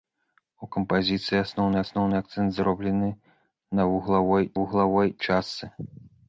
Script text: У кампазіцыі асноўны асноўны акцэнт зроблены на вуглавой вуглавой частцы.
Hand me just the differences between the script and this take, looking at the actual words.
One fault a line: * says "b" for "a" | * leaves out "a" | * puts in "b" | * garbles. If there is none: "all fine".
all fine